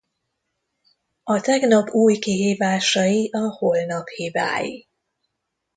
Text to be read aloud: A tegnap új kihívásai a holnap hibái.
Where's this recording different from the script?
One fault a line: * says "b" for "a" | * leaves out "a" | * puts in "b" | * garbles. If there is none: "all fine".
all fine